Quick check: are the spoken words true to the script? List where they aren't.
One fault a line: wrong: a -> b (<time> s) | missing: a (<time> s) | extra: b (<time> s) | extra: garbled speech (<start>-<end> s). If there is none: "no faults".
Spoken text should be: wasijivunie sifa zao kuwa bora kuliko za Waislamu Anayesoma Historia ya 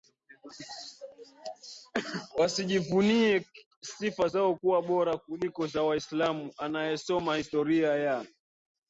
no faults